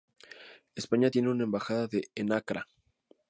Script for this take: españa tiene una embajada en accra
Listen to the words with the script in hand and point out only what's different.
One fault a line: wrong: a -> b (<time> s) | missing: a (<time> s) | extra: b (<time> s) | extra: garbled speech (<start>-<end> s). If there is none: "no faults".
no faults